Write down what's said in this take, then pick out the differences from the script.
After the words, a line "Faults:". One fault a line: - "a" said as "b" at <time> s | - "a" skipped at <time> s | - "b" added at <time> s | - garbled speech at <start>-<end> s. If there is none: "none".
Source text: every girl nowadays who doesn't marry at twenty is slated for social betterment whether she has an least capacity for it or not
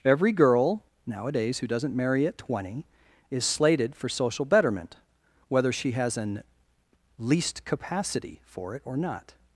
every girl nowadays who doesn't marry at twenty is slated for social betterment whether she has an least capacity for it or not
Faults:
none